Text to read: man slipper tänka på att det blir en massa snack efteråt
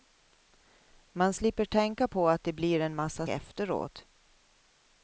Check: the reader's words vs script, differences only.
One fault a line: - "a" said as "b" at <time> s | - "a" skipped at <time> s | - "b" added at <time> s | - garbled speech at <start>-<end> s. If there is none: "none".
- "snack" skipped at 3.3 s